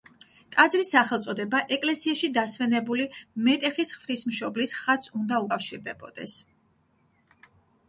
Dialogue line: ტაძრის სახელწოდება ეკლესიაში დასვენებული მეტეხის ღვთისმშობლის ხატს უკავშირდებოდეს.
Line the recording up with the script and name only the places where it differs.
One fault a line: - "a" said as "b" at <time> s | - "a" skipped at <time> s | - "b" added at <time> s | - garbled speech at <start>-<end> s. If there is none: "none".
- "უნდა" added at 5.2 s